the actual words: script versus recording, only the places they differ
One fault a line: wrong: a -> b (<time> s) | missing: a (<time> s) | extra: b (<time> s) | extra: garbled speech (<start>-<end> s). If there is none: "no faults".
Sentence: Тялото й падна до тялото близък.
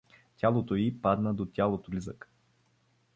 no faults